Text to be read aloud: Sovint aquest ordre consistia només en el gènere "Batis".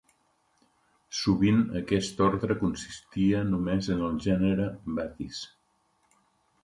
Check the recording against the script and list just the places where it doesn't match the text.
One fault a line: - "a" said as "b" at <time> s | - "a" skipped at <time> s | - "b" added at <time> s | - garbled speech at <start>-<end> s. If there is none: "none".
none